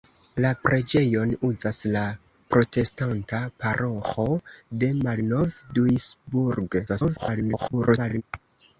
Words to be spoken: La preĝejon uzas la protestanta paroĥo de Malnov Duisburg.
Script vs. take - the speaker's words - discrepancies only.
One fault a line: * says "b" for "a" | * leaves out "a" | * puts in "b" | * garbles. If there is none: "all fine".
* garbles